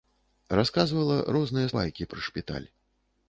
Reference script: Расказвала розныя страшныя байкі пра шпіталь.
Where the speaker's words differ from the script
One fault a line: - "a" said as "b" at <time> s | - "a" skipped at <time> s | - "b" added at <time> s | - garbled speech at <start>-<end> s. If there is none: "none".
- "страшныя" skipped at 1.7 s